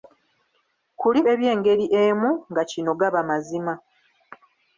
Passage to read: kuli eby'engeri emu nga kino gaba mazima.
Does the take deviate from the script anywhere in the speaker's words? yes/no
no